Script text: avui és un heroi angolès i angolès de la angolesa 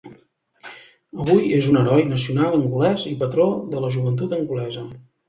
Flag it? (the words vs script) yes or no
yes